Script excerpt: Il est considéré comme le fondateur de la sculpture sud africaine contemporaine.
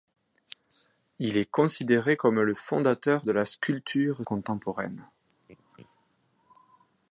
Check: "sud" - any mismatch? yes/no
yes